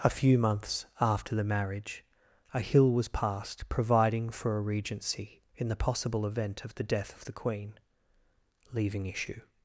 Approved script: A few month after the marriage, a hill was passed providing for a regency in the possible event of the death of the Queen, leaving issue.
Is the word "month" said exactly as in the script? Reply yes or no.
no